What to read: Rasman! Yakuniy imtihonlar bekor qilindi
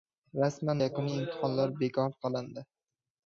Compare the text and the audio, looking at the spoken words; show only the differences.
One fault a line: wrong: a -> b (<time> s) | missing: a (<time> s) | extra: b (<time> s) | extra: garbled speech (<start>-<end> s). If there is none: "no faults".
no faults